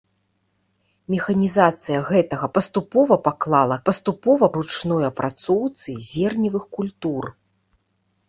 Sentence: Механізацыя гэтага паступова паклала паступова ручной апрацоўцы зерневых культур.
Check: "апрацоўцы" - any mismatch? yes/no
no